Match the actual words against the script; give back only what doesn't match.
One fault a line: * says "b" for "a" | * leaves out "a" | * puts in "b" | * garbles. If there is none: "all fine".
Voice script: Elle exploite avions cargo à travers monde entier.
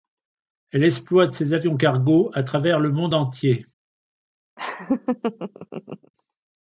* puts in "ses"
* puts in "le"